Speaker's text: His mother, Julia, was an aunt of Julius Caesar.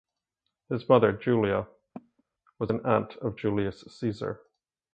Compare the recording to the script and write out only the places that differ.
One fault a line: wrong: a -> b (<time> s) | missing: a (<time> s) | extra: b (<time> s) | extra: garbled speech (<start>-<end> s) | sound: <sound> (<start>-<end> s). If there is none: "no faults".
sound: cough (1.9-2.2 s)